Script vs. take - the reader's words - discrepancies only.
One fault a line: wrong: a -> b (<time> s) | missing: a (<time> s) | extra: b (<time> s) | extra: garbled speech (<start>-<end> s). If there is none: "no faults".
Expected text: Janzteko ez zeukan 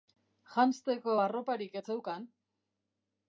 extra: arroparik (1.2 s)